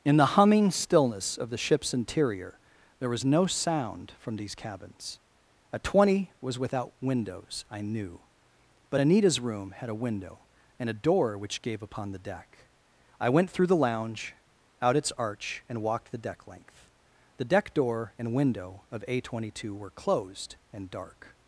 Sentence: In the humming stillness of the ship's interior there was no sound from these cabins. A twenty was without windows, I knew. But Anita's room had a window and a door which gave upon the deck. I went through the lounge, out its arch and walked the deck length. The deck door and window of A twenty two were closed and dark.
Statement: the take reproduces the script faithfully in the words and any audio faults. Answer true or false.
true